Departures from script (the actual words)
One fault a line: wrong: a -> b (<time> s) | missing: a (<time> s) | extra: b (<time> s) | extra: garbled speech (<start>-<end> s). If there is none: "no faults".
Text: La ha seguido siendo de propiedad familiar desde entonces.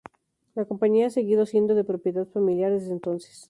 extra: compañía (0.7 s)